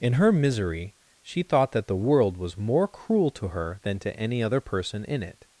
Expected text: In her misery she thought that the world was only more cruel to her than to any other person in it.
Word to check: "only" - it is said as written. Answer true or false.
false